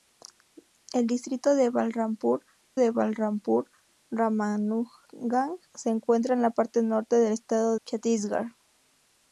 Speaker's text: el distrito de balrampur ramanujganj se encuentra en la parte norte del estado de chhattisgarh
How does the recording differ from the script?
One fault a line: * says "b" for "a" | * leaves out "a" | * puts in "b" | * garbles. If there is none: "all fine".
* puts in "de balrampur"
* leaves out "de"